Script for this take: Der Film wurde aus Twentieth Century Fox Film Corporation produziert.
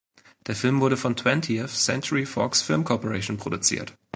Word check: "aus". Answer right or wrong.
wrong